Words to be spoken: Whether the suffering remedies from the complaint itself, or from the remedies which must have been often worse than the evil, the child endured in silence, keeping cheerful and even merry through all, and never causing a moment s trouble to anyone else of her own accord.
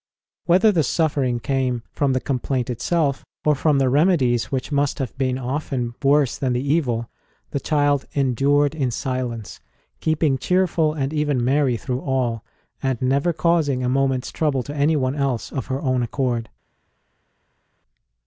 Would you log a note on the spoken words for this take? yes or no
yes